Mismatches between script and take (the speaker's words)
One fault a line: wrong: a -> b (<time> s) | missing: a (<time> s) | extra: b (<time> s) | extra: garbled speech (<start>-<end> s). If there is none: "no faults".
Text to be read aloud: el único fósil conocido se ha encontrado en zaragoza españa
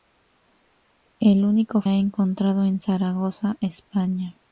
missing: fósil conocido se (1.8 s)